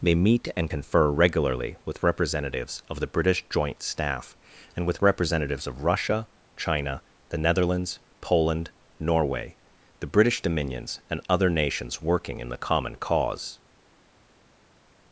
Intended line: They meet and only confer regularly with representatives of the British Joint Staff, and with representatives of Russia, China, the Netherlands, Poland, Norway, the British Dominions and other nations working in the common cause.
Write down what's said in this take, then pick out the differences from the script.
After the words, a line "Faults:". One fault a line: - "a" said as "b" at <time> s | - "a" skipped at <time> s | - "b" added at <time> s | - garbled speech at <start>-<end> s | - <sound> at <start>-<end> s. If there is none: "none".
They meet and confer regularly with representatives of the British Joint Staff, and with representatives of Russia, China, the Netherlands, Poland, Norway, the British Dominions and other nations working in the common cause.
Faults:
- "only" skipped at 0.7 s